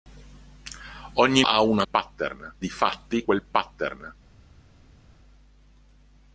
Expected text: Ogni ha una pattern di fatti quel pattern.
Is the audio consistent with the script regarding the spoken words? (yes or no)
yes